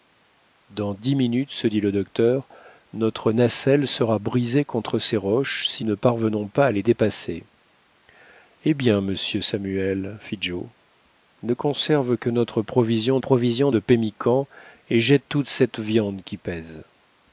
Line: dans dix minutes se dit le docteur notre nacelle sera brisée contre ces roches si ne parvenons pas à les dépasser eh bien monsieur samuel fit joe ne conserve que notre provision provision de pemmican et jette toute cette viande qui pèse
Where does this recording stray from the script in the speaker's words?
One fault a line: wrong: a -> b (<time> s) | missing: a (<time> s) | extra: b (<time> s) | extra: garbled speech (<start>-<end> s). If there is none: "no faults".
no faults